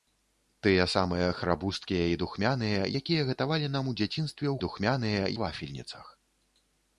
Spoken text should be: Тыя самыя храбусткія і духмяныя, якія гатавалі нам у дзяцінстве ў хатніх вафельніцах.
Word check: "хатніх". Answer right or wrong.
wrong